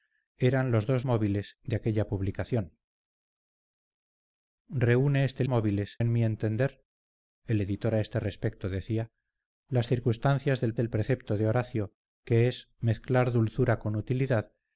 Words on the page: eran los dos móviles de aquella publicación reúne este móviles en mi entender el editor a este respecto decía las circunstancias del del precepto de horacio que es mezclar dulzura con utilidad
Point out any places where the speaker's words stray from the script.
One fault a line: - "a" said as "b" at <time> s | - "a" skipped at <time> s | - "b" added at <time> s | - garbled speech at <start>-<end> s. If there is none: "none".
none